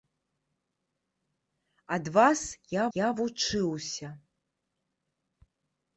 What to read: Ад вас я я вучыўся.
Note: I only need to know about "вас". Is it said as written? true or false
true